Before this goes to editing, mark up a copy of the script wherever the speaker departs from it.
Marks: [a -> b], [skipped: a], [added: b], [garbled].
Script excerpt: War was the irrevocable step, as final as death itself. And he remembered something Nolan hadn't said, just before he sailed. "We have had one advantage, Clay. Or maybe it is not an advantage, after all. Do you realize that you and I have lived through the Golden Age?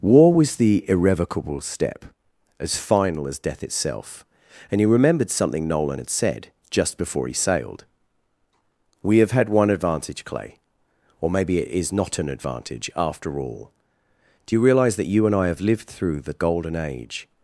War was the irrevocable step, as final as death itself. And he remembered something Nolan [hadn't -> had] said, just before he sailed. "We have had one advantage, Clay. Or maybe it is not an advantage, after all. Do you realize that you and I have lived through the Golden Age?